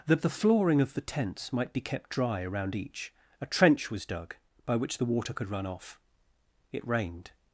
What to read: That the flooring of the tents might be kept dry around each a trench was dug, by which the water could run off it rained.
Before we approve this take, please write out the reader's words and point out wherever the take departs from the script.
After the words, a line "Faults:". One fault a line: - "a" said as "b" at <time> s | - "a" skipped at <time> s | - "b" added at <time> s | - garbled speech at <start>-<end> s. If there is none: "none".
That the flooring of the tents might be kept dry around each a trench was dug, by which the water could run off it rained.
Faults:
none